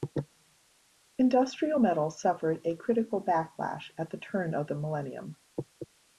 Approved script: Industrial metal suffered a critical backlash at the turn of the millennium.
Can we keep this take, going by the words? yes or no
yes